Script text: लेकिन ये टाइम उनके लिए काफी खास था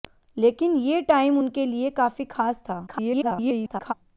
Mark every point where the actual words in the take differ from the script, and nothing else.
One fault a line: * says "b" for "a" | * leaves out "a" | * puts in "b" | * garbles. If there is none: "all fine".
* garbles